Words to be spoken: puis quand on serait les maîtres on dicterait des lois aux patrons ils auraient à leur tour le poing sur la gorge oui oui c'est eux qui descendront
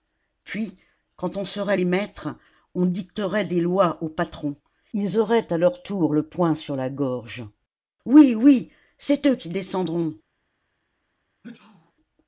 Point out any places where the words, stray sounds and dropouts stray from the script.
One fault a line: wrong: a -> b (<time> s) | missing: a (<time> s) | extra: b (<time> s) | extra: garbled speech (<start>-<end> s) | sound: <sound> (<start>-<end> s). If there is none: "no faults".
sound: sneeze (11.4-11.9 s)